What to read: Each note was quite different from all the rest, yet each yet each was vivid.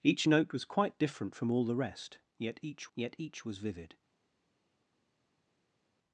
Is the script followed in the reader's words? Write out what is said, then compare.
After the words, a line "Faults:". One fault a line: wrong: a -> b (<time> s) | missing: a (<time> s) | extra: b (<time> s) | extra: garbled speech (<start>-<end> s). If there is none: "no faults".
Each note was quite different from all the rest, yet each yet each was vivid.
Faults:
no faults